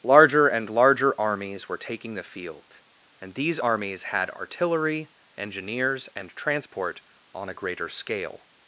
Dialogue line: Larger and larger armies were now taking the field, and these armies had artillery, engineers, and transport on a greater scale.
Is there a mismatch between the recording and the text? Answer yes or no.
yes